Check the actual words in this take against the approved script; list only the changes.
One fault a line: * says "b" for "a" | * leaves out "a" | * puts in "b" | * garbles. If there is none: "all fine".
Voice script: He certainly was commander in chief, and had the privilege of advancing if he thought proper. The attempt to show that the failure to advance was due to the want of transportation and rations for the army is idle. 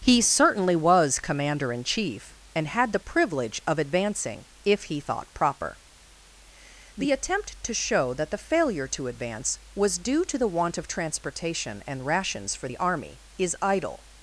all fine